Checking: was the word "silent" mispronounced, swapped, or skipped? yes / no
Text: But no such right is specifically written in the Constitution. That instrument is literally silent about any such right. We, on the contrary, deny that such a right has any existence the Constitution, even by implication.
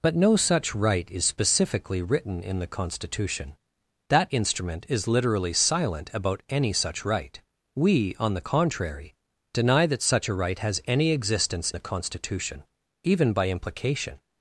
no